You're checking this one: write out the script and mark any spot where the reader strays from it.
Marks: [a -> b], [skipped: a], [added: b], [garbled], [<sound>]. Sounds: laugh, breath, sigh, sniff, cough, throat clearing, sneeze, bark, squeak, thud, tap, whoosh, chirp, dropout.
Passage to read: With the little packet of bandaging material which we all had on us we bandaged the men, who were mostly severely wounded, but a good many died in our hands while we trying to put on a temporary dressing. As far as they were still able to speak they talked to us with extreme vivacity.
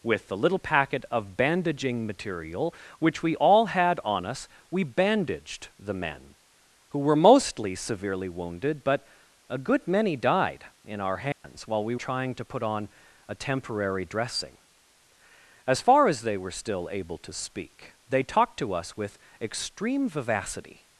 With the little packet of bandaging material which we all had on us we bandaged the men, who were mostly severely wounded, but a good many died in our hands [dropout] while we trying to put on a temporary dressing. As far as they were still able to speak they talked to us with extreme vivacity.